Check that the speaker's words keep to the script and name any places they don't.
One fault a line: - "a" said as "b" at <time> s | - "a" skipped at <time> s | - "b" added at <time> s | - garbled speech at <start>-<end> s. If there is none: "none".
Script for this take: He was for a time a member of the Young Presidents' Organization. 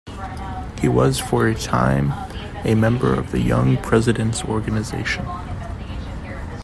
none